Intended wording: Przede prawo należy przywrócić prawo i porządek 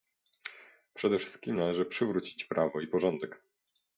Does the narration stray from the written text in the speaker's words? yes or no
yes